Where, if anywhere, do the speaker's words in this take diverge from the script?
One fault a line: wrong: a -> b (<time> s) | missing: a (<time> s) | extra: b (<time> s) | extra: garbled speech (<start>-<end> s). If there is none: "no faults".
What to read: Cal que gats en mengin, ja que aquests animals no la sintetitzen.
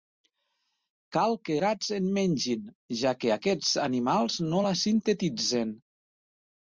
no faults